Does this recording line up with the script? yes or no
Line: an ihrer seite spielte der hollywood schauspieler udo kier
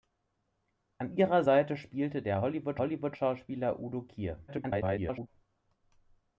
no